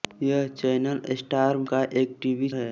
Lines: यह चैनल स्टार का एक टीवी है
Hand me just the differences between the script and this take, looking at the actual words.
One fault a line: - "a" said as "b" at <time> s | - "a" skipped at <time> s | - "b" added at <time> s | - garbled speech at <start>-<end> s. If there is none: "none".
none